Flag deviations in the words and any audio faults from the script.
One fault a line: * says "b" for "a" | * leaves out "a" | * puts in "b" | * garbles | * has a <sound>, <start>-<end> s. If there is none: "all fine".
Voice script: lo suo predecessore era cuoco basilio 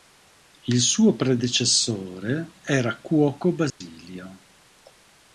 * says "il" for "lo"
* has a dropout, 3.7-3.8 s